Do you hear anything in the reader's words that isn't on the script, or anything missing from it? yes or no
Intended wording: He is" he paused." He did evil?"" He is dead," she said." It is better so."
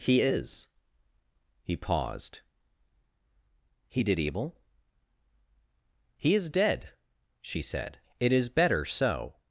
no